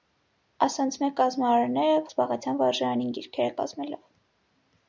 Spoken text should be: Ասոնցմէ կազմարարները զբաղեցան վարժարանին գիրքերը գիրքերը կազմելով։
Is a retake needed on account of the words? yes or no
yes